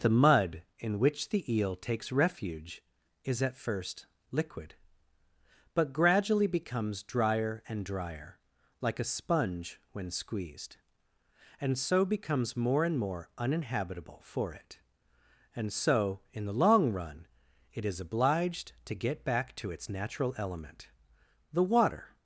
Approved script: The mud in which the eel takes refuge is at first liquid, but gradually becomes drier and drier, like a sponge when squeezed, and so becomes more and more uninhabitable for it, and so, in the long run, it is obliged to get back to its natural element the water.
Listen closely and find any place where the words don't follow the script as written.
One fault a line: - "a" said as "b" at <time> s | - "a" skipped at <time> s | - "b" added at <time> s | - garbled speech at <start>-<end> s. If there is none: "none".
none